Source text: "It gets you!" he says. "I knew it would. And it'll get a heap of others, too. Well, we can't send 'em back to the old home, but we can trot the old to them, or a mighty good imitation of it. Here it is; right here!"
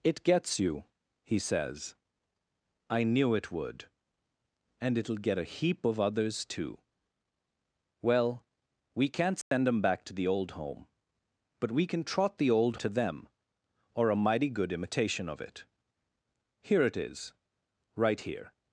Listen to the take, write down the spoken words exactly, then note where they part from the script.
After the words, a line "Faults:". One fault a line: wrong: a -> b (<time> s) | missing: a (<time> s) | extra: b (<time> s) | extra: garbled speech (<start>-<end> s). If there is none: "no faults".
"It gets you!" he says. "I knew it would. And it'll get a heap of others, too. Well, we can't send 'em back to the old home, but we can trot the old to them, or a mighty good imitation of it. Here it is; right here!"
Faults:
no faults